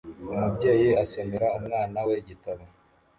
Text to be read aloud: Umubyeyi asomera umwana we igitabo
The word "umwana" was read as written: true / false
true